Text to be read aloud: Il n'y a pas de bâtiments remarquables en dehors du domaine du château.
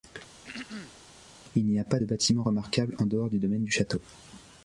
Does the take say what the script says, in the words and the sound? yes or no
no